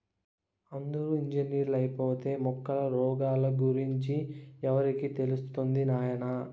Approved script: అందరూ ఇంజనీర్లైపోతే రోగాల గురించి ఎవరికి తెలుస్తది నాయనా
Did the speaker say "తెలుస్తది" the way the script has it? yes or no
yes